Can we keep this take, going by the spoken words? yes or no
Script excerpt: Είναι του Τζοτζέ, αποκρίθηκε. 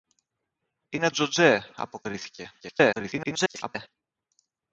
no